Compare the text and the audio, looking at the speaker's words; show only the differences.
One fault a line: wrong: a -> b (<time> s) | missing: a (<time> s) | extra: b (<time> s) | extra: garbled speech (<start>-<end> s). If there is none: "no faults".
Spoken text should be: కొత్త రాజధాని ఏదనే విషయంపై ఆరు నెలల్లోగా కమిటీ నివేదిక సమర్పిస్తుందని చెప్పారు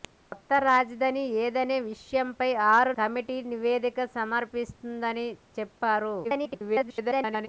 missing: నెలల్లోగా (2.9 s)
extra: garbled speech (6.2-7.5 s)